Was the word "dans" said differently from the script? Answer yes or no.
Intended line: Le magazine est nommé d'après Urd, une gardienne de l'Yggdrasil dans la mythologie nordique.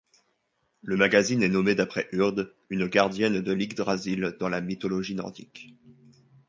no